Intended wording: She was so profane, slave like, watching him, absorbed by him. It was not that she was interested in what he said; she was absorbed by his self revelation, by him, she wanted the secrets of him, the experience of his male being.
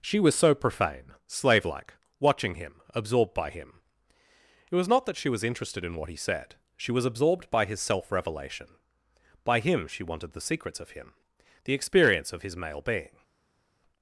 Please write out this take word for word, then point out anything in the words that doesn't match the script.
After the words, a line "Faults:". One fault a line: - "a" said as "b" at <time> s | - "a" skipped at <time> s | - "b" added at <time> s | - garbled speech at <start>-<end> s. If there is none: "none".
She was so profane, slave like, watching him, absorbed by him. It was not that she was interested in what he said; she was absorbed by his self revelation, by him, she wanted the secrets of him, the experience of his male being.
Faults:
none